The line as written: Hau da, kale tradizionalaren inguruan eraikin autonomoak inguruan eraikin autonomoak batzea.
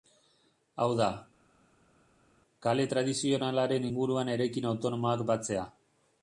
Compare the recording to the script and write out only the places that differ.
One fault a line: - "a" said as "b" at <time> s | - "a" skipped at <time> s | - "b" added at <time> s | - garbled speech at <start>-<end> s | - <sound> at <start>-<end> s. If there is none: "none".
- "inguruan eraikin autonomoak" skipped at 5.3 s